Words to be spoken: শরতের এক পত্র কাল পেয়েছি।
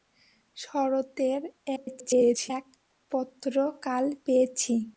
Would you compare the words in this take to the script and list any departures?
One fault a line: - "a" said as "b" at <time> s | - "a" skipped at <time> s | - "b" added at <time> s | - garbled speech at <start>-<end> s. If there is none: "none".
- garbled speech at 1.8-2.5 s